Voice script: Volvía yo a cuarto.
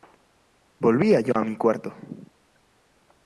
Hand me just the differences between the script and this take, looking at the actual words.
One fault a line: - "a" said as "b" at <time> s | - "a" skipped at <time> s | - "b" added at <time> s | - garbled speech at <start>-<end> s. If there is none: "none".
- "mi" added at 1.4 s